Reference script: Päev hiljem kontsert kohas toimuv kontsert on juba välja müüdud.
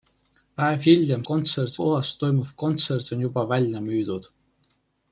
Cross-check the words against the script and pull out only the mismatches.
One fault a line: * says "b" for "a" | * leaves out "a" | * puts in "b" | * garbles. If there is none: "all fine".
all fine